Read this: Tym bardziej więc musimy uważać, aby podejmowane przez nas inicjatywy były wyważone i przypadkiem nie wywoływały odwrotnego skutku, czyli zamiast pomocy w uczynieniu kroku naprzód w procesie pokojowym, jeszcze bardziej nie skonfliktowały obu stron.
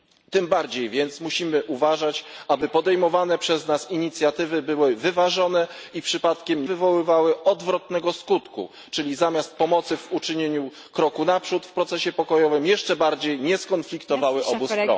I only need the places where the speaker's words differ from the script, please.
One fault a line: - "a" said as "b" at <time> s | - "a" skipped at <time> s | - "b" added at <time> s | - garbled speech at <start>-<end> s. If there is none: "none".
- "nie" skipped at 6.7 s